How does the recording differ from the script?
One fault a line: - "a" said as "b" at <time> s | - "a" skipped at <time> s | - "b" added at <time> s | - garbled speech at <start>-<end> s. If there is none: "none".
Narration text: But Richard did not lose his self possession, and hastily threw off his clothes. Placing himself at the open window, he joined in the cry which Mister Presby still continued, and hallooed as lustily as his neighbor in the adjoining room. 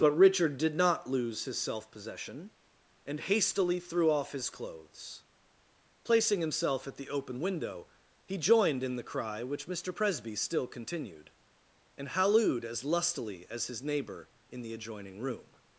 none